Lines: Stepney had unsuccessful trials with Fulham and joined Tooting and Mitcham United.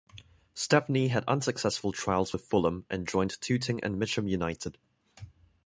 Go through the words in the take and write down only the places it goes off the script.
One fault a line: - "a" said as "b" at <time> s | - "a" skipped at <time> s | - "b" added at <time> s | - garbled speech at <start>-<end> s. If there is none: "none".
none